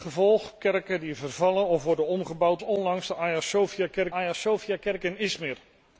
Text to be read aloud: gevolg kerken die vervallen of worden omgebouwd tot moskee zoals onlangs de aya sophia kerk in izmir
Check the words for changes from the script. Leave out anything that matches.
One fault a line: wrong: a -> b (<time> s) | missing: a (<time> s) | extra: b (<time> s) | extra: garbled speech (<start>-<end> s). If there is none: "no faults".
wrong: tot moskee zoals onlangs de -> onlangs de aya sophia kerk (2.6 s)